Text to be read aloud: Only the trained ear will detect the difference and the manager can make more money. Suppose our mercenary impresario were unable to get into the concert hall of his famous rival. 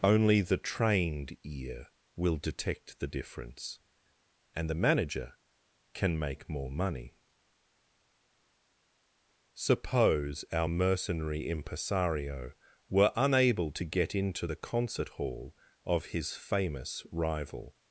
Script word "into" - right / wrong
right